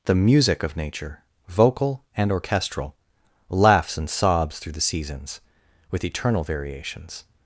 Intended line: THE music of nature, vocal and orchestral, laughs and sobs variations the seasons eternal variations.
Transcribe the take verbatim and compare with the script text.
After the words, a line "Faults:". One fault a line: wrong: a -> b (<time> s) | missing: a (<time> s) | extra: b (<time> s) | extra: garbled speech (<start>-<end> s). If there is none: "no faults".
THE music of nature, vocal and orchestral, laughs and sobs through the seasons with eternal variations.
Faults:
wrong: variations -> through (4.6 s)
extra: with (5.9 s)